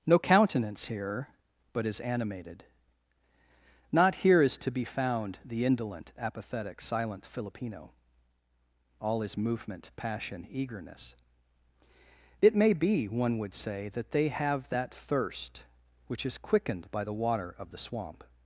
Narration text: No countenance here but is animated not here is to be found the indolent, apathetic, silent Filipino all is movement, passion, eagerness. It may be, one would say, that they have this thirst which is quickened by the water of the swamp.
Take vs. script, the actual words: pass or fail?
fail